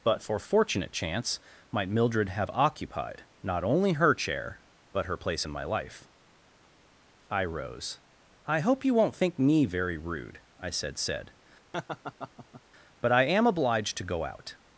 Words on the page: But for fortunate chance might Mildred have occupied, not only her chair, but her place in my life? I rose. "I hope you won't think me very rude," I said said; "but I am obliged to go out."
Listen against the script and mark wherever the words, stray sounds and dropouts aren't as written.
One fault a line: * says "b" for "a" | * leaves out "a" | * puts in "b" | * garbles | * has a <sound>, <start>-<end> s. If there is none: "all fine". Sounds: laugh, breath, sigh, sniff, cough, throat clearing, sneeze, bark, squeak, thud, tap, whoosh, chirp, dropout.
* has a laugh, 11.7-12.6 s